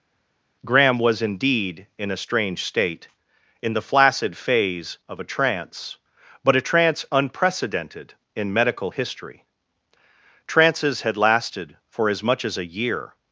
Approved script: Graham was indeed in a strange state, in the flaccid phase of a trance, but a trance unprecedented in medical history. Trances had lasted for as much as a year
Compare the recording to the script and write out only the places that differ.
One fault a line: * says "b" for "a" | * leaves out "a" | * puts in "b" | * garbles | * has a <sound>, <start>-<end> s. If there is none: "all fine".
all fine